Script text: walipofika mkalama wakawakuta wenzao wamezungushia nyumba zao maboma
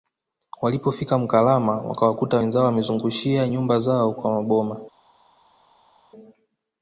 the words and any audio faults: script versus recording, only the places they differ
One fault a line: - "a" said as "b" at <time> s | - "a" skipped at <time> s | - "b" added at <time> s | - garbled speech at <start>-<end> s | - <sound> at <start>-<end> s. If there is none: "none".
- "kwa" added at 4.1 s